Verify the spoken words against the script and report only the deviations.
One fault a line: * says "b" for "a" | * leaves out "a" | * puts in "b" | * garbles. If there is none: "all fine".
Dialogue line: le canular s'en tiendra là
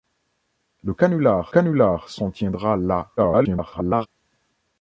* puts in "canular"
* garbles